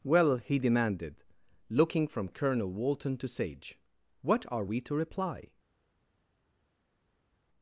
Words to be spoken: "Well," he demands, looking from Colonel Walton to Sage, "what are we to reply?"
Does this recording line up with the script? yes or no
no